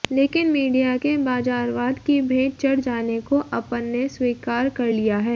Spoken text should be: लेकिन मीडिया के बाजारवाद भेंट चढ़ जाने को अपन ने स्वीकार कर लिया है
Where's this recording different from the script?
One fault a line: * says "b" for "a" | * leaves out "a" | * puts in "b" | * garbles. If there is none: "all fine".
* puts in "की"